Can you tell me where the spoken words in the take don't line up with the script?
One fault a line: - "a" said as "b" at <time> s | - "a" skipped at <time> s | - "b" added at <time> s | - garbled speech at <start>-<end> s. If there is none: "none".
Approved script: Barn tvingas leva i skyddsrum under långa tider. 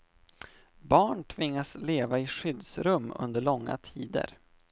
none